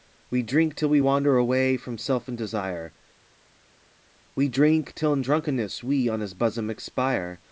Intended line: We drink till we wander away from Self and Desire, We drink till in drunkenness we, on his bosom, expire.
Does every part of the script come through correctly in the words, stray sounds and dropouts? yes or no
yes